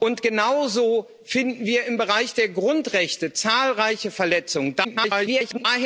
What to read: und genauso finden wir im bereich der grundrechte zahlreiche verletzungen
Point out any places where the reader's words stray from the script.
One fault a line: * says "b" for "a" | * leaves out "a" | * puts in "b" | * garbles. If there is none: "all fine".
* garbles